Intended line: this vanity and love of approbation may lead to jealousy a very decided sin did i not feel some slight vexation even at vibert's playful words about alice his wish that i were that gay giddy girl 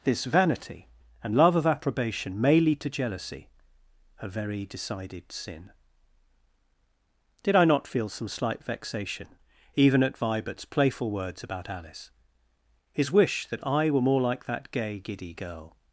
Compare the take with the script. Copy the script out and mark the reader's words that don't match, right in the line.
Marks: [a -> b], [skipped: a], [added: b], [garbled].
this vanity and love of approbation may lead to jealousy a very decided sin did i not feel some slight vexation even at vibert's playful words about alice his wish that i were [added: more like] that gay giddy girl